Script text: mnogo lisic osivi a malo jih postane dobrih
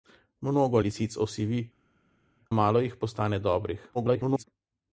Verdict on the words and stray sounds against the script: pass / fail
fail